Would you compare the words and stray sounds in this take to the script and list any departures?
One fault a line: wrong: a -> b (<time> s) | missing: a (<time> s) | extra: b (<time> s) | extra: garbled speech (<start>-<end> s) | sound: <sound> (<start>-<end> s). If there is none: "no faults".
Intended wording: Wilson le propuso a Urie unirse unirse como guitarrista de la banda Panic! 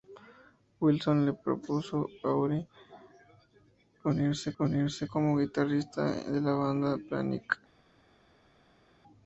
no faults